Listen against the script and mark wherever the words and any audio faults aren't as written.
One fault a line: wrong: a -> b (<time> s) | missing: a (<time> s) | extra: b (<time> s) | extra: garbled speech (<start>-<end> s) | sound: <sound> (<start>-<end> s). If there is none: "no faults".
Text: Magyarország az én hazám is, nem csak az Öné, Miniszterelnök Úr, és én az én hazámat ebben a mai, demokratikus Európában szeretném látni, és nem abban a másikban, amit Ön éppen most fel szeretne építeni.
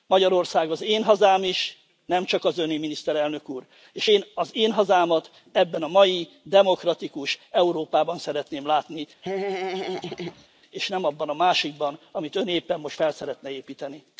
sound: laugh (9.2-10.5 s)